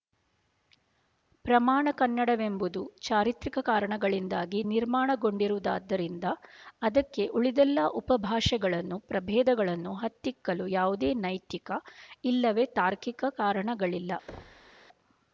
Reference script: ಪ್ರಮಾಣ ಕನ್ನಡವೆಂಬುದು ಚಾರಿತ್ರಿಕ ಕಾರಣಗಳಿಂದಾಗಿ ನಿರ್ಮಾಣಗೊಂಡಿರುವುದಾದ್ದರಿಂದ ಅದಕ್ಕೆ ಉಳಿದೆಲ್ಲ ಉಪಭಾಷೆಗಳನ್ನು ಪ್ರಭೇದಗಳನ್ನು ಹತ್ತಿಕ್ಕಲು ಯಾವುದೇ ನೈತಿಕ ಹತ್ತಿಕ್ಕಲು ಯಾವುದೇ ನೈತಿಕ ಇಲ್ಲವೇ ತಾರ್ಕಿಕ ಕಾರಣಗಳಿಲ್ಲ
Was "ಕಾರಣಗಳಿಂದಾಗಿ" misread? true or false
false